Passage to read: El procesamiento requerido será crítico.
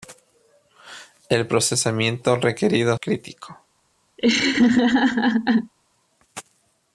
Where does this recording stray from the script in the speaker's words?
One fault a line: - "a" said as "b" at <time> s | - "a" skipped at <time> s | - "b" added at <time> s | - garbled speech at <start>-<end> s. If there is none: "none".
- "será" skipped at 3.0 s